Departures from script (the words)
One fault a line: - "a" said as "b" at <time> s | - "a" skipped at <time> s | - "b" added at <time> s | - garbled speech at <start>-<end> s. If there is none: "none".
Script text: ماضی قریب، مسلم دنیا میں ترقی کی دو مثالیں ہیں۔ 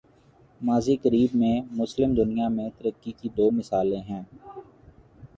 - "میں" added at 1.4 s